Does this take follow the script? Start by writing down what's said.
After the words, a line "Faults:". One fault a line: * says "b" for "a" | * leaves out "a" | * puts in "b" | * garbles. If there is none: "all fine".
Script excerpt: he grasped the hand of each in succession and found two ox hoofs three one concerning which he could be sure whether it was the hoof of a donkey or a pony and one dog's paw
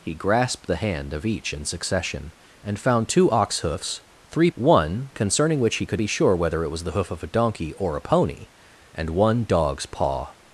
he grasped the hand of each in succession and found two ox hoofs three one concerning which he could be sure whether it was the hoof of a donkey or a pony and one dog's paw
Faults:
all fine